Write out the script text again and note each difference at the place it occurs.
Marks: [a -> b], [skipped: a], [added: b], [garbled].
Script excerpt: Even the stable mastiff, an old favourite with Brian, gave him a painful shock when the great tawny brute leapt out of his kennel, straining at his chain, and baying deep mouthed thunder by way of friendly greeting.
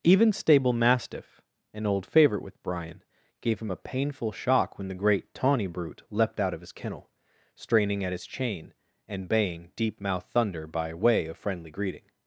Even [skipped: the] stable mastiff, an old favourite with Brian, gave him a painful shock when the great tawny brute leapt out of his kennel, straining at his chain, and baying deep mouthed thunder by way of friendly greeting.